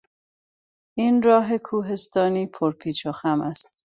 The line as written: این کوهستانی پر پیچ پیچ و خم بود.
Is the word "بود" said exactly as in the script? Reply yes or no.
no